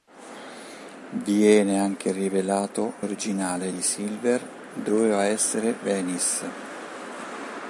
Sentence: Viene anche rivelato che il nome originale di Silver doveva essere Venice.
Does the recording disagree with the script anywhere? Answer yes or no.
yes